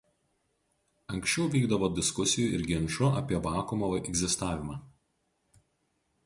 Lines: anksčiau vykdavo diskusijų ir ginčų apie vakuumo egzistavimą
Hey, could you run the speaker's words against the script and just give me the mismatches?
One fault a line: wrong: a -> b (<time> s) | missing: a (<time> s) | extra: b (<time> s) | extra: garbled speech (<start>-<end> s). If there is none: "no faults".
no faults